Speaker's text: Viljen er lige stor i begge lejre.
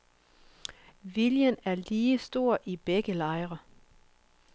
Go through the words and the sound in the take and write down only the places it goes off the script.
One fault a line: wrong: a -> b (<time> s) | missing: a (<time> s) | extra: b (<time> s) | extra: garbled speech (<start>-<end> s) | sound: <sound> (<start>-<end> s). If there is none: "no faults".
no faults